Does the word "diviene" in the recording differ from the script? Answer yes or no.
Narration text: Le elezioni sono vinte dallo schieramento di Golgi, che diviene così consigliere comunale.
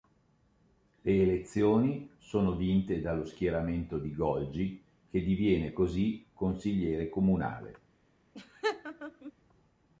no